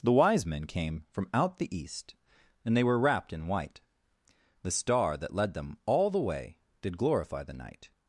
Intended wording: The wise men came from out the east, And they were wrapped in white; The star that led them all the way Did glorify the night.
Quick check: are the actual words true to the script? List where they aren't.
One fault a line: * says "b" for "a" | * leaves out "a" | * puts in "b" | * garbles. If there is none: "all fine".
all fine